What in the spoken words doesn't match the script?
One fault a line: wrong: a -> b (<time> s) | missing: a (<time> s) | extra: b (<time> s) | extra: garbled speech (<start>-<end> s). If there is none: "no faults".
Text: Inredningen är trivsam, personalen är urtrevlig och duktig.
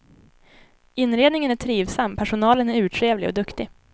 no faults